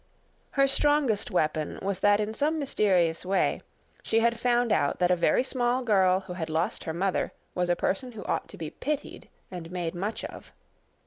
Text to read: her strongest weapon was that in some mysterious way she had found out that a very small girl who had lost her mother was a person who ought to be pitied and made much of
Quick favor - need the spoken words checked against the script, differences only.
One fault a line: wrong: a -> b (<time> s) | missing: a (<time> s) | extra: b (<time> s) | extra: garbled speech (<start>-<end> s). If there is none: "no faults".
no faults